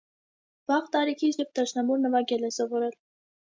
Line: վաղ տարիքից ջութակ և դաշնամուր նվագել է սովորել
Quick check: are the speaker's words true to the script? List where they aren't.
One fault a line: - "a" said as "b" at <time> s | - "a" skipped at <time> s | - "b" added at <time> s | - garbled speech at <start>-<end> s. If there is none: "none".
- "ջութակ" skipped at 1.4 s